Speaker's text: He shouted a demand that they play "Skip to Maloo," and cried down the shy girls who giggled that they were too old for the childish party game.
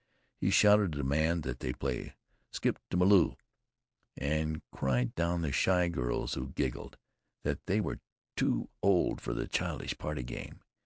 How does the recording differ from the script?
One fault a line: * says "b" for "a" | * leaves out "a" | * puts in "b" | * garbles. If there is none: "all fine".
all fine